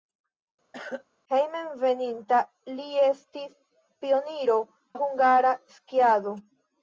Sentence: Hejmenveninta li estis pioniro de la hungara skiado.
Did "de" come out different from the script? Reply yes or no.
yes